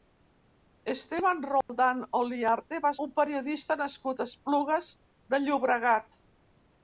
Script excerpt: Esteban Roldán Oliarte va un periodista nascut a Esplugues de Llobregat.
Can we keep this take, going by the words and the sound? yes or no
no